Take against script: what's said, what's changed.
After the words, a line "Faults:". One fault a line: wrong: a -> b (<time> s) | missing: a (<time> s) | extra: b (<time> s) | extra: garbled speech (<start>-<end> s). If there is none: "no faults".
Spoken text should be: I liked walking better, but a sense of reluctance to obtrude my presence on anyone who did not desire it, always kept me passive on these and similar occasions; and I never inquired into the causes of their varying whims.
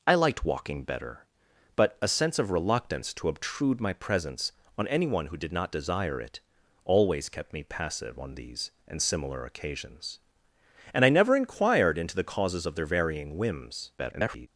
I liked walking better, but a sense of reluctance to obtrude my presence on anyone who did not desire it, always kept me passive on these and similar occasions; and I never inquired into the causes of their varying whims. [garbled]
Faults:
extra: garbled speech (14.0-14.5 s)